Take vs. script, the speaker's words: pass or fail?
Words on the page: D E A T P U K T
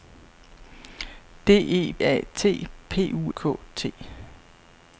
pass